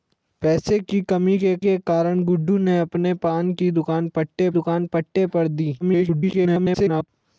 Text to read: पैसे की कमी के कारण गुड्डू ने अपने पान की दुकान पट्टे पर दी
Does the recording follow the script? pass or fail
fail